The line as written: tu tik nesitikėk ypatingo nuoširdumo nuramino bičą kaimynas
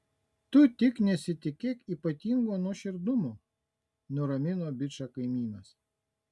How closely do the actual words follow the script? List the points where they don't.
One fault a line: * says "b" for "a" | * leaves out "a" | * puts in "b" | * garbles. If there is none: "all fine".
all fine